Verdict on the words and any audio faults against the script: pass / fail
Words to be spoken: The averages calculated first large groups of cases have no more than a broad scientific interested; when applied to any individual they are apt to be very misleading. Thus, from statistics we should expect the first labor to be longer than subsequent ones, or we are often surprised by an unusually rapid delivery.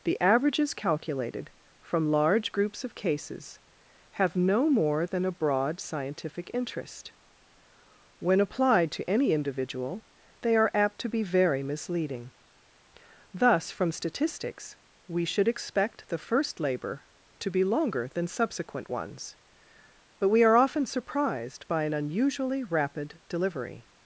fail